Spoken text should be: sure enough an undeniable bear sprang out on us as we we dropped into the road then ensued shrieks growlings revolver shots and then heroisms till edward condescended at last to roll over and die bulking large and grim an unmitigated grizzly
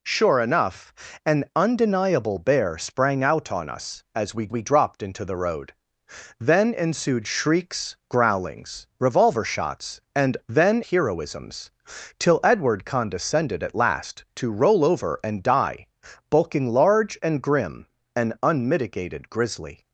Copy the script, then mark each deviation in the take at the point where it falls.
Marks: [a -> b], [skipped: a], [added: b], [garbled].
sure enough an undeniable bear sprang out on us as we we dropped into the road then ensued shrieks growlings revolver shots and then heroisms till edward condescended at last to roll over and die bulking large and grim an unmitigated grizzly